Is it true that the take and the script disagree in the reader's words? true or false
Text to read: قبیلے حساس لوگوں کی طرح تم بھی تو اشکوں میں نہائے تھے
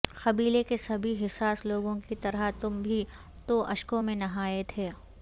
true